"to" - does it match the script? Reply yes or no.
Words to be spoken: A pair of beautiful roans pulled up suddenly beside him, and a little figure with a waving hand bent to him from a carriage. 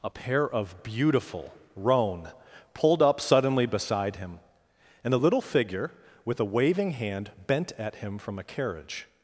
no